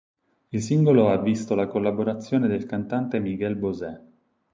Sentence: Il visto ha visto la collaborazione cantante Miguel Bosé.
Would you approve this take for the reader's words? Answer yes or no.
no